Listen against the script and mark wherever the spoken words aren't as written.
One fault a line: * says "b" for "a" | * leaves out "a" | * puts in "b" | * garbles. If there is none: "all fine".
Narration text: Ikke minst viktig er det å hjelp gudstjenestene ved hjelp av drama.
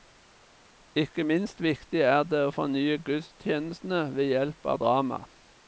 * says "fornye" for "hjelp"